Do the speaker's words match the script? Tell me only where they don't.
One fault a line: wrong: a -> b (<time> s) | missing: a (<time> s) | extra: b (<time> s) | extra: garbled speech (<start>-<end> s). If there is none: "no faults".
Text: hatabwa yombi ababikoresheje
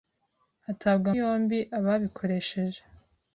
no faults